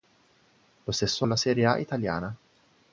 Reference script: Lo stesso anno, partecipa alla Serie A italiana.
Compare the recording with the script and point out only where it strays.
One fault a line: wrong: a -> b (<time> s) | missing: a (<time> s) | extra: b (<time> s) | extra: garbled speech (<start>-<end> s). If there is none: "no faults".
missing: anno partecipa (1.3 s)